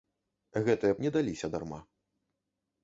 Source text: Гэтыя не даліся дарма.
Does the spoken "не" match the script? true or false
true